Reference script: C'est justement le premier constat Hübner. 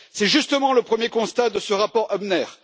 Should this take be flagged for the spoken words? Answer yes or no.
yes